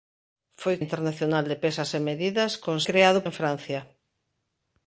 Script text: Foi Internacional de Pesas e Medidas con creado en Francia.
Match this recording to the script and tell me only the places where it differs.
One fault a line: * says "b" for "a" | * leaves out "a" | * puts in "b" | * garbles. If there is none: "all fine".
all fine